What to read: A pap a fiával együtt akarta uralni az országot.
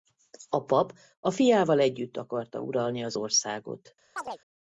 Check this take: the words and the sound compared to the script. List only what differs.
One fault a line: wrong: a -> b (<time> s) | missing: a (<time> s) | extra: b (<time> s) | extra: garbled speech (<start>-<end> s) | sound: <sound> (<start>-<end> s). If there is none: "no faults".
sound: chirp (4.2-4.4 s)